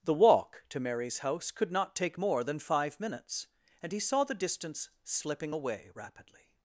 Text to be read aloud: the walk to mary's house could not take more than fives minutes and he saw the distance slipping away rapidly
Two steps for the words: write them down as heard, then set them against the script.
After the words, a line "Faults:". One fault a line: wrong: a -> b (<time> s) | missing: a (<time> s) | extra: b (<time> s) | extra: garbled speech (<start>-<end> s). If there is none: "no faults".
the walk to mary's house could not take more than five minutes and he saw the distance slipping away rapidly
Faults:
wrong: fives -> five (2.6 s)